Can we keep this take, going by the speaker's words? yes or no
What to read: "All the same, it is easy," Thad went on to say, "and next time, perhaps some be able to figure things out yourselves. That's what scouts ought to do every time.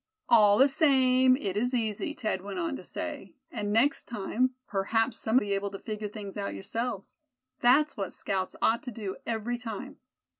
yes